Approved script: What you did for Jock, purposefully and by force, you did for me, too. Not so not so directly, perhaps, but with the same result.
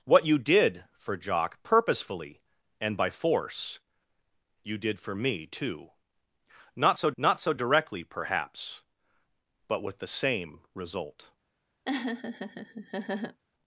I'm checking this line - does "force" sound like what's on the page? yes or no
yes